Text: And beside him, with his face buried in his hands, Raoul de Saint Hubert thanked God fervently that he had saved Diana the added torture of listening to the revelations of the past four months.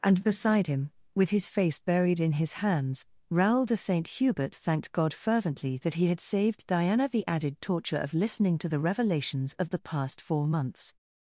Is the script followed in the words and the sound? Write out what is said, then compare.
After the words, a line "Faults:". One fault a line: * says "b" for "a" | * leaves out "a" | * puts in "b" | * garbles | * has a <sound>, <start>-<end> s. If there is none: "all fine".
And beside him, with his face buried in his hands, Raoul de Saint Hubert thanked God fervently that he had saved Diana the added torture of listening to the revelations of the past four months.
Faults:
all fine